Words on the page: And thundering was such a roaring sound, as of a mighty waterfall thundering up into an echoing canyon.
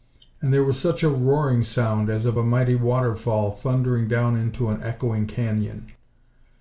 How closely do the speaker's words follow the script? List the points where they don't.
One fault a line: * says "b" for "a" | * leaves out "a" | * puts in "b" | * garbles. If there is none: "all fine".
* says "there" for "thundering"
* says "down" for "up"